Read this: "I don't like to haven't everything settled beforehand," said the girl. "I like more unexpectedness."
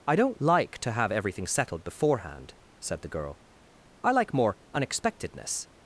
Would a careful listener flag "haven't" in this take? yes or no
yes